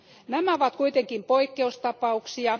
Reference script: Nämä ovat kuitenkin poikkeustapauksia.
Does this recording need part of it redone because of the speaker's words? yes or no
no